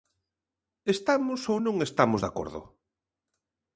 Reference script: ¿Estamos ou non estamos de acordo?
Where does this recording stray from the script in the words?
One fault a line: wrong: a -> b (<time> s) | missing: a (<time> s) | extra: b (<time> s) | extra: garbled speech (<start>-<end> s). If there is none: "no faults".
no faults